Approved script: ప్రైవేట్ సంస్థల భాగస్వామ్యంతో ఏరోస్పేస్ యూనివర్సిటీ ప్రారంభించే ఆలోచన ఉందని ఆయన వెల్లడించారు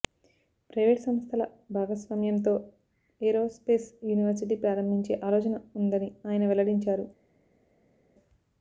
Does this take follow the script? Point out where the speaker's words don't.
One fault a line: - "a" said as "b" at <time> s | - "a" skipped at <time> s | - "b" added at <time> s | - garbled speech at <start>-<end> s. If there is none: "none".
none